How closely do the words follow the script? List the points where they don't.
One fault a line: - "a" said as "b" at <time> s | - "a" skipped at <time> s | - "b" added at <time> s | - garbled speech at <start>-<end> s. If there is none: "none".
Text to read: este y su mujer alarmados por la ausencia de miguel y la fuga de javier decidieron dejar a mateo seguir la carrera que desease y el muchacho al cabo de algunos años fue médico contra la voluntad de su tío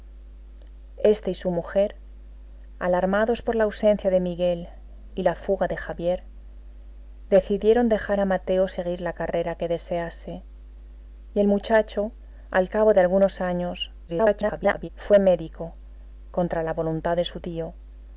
- garbled speech at 14.1-14.9 s